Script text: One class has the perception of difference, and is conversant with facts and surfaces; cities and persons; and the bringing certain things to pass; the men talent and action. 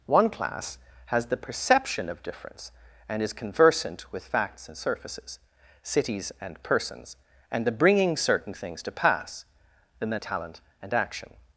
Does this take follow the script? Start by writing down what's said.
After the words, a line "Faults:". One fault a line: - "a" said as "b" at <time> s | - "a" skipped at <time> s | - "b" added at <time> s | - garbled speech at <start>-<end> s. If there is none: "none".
One class has the perception of difference, and is conversant with facts and surfaces; cities and persons; and the bringing certain things to pass; the men talent and action.
Faults:
none